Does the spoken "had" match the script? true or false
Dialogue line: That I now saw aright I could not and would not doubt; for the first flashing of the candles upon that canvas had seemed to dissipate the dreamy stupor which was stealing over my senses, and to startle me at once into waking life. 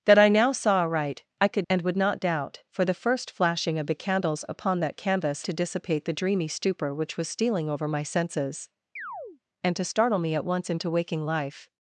false